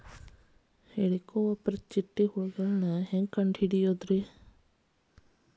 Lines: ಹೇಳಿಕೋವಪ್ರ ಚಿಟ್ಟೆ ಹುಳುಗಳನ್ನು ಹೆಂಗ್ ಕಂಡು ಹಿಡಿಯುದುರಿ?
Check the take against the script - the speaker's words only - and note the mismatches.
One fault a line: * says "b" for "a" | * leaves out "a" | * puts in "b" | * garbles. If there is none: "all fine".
all fine